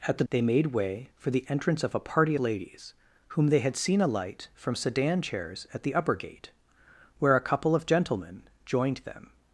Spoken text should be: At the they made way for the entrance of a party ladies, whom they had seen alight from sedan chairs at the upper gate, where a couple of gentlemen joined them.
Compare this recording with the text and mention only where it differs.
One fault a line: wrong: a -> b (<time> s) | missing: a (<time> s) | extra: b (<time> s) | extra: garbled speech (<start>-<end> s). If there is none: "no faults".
no faults